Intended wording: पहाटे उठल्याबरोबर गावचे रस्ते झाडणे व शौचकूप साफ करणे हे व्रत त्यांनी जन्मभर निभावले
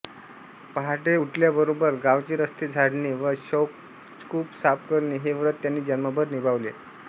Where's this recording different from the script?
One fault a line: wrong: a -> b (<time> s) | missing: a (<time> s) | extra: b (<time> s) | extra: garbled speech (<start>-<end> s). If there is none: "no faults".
no faults